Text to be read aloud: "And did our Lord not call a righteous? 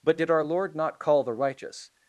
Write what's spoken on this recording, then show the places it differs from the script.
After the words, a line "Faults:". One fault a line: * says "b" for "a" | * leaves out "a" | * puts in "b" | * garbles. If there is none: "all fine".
"But did our Lord not call the righteous?
Faults:
* says "But" for "And"
* says "the" for "a"